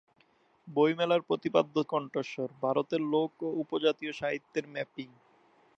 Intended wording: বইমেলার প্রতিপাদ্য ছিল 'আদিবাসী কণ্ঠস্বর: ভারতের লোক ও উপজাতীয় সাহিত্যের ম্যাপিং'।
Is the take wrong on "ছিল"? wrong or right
wrong